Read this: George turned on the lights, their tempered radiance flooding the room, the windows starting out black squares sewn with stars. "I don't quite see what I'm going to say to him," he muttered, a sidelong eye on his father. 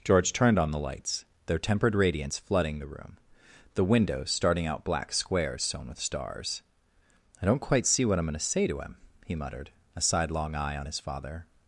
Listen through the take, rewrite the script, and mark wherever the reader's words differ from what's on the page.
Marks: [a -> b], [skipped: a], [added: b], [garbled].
George turned on the lights, their tempered radiance flooding the room, the windows starting out black squares sewn with stars. "I don't quite see what I'm going to say to him," he muttered, a sidelong eye on his father.